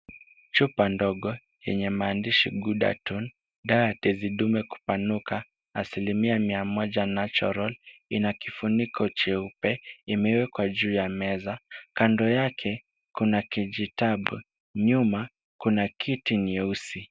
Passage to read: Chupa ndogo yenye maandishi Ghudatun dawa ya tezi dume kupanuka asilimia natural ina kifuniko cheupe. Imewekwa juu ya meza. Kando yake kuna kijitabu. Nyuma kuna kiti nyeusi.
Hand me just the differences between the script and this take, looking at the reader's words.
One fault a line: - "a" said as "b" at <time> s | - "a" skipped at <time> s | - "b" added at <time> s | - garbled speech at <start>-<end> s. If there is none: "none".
- "mia moja" added at 6.4 s